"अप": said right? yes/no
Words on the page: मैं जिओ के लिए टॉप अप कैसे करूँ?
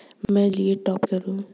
no